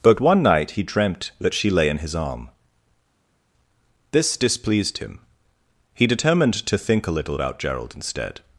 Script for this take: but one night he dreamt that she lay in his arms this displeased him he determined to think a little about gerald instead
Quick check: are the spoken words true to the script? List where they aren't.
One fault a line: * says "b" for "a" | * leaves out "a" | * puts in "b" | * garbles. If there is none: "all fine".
* says "arm" for "arms"